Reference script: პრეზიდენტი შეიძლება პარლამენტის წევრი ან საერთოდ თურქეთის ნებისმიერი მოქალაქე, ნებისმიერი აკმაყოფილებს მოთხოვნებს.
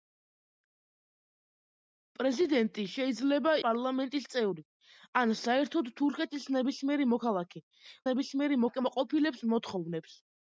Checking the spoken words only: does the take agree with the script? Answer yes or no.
yes